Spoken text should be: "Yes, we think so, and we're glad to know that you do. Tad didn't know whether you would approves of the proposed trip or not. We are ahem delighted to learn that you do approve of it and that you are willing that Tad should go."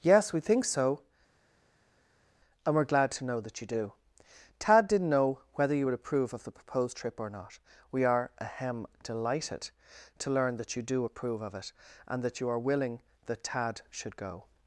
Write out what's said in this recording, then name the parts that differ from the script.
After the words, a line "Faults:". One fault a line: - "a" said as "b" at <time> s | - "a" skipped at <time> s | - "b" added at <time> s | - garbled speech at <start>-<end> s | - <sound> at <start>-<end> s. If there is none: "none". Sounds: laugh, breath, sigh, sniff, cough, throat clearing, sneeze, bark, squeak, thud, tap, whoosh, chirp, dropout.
"Yes, we think so, and we're glad to know that you do. Tad didn't know whether you would approve of the proposed trip or not. We are ahem delighted to learn that you do approve of it and that you are willing that Tad should go."
Faults:
- "approves" said as "approve" at 5.9 s